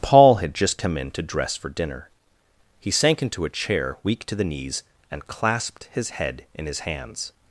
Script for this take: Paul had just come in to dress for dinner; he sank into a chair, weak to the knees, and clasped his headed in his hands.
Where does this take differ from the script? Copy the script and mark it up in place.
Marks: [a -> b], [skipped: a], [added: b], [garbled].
Paul had just come in to dress for dinner; he sank into a chair, weak to the knees, and clasped his [headed -> head] in his hands.